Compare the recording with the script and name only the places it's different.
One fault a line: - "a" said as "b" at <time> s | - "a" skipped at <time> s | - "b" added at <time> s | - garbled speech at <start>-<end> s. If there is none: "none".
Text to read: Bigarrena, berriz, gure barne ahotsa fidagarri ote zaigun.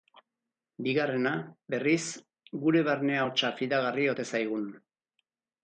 none